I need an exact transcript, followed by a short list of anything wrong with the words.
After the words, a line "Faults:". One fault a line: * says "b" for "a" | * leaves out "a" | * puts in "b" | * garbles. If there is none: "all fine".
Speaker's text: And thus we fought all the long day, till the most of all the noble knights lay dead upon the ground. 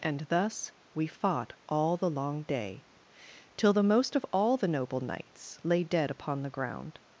And thus we fought all the long day, till the most of all the noble knights lay dead upon the ground.
Faults:
all fine